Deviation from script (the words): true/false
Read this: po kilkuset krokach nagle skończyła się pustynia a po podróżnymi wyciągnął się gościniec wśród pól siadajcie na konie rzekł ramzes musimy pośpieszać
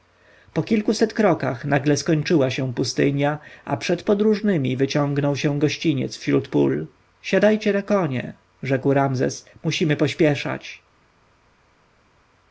true